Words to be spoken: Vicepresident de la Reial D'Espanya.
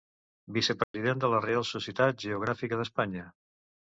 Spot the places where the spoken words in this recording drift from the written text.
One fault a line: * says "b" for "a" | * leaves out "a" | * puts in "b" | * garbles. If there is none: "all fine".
* puts in "Societat Geogràfica"